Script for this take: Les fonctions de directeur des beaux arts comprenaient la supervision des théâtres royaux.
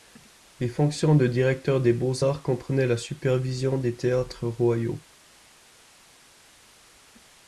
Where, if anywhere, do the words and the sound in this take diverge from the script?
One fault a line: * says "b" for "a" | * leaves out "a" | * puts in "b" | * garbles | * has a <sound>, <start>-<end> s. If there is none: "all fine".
all fine